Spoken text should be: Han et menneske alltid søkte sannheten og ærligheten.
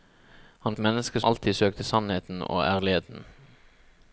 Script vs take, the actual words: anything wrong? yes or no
no